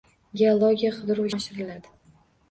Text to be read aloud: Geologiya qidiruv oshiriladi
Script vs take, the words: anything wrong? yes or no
no